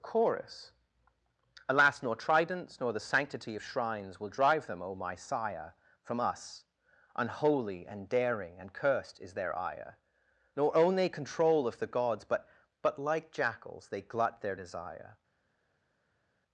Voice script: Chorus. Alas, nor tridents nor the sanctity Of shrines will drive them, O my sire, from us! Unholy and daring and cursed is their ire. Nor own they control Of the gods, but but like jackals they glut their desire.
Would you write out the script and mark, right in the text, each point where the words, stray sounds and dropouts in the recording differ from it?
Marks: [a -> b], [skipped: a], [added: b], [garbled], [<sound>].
Chorus. Alas, nor tridents nor the sanctity Of shrines will drive them, O my sire, from us! Unholy and daring and cursed is their ire. Nor own they control Of the gods, but but like jackals they glut their desire.